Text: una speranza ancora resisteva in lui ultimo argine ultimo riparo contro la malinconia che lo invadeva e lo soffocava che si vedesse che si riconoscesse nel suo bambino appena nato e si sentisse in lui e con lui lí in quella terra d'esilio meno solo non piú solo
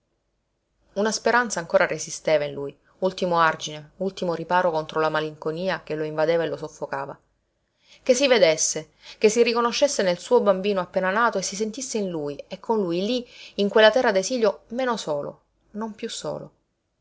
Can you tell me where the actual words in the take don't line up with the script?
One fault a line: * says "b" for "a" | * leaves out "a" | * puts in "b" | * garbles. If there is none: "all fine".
all fine